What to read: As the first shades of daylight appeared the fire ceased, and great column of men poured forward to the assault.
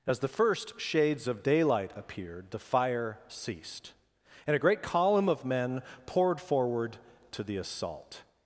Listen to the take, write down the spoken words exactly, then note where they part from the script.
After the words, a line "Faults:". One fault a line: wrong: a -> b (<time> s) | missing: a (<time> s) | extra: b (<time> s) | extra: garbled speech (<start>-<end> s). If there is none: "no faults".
As the first shades of daylight appeared the fire ceased, and a great column of men poured forward to the assault.
Faults:
extra: a (4.5 s)